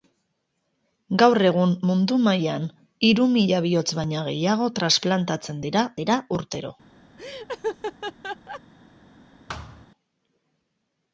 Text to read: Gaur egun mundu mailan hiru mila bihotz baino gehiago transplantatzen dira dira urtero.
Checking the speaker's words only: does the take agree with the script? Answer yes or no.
yes